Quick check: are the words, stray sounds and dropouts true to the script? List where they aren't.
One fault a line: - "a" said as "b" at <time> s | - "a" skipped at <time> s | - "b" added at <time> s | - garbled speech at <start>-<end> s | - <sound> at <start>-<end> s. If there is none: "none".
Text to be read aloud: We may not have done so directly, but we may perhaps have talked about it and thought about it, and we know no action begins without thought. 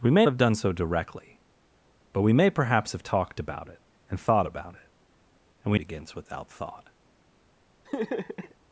- "not" skipped at 0.2 s
- "know no action" skipped at 5.8 s
- laugh at 7.8-8.5 s